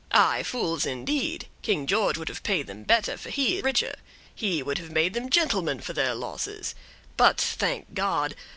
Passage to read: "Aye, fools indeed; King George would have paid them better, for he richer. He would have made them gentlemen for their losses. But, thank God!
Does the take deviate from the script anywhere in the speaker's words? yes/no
no